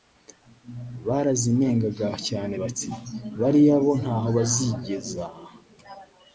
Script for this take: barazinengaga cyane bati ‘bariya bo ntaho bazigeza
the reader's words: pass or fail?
pass